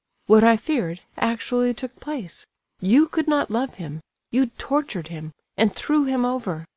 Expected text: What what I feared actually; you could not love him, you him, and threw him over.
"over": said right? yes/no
yes